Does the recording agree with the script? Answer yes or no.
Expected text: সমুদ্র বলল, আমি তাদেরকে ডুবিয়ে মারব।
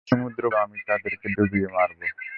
no